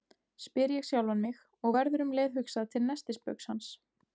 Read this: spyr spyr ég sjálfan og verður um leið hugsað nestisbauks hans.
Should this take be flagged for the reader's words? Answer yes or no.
yes